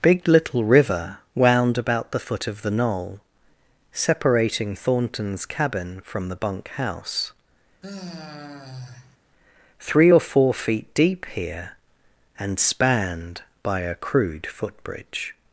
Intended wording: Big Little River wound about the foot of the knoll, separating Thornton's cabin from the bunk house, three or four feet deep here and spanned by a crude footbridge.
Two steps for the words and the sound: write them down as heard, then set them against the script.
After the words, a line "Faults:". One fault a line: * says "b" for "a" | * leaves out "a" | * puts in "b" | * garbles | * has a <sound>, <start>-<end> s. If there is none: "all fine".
Big Little River wound about the foot of the knoll, separating Thornton's cabin from the bunk house, three or four feet deep here and spanned by a crude footbridge.
Faults:
* has a sigh, 7.8-9.2 s